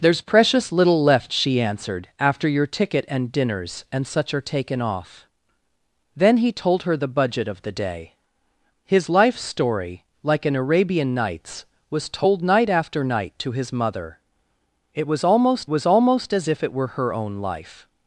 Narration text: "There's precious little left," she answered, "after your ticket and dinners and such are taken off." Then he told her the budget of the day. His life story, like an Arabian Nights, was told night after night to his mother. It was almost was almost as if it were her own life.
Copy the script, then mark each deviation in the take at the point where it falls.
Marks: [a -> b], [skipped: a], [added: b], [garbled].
"There's precious little left," she answered, "after your ticket and dinners and such are taken off." Then he told her the budget of the day. His life story, like an Arabian Nights, was told night after night to his mother. It was almost was almost as if it were her own life.